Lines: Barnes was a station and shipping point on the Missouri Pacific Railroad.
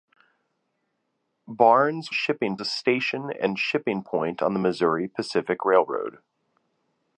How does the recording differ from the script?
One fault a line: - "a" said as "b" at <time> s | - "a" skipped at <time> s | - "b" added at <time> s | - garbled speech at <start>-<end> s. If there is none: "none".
- "was" said as "shipping" at 2.1 s